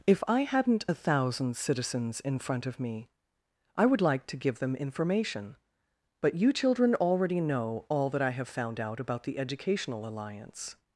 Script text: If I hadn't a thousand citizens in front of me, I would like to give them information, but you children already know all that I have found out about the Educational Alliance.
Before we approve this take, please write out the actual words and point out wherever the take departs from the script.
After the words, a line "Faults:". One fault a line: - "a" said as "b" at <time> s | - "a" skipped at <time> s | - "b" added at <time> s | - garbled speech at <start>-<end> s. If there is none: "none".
If I hadn't a thousand citizens in front of me, I would like to give them information, but you children already know all that I have found out about the Educational Alliance.
Faults:
none